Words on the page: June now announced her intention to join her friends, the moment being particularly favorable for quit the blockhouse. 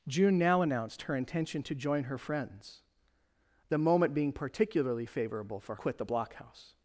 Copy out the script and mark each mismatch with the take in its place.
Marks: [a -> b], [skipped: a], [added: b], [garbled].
June now announced her intention to join her friends, the moment being particularly favorable for quit the blockhouse.